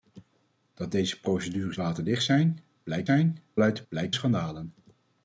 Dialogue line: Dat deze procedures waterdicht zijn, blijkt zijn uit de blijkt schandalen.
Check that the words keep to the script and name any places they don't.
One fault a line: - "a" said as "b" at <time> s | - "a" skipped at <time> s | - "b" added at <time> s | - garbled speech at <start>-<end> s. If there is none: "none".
none